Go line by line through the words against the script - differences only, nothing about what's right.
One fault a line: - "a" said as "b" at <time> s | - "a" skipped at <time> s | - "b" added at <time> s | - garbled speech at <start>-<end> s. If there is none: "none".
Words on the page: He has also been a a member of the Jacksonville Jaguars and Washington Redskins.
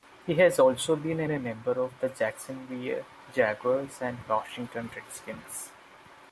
none